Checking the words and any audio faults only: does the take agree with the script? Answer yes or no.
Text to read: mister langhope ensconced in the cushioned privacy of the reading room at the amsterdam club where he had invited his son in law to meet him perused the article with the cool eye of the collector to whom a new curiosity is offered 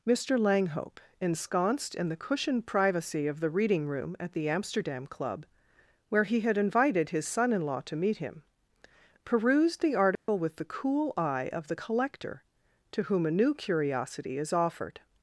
no